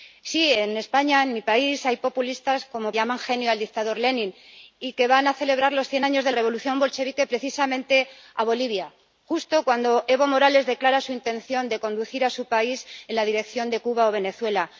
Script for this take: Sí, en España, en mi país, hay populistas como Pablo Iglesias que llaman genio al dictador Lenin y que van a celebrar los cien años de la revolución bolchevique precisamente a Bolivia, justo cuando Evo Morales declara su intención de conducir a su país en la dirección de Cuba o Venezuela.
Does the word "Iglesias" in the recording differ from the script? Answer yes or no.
yes